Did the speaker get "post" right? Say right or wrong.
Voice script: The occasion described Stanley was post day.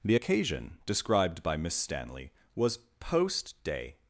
right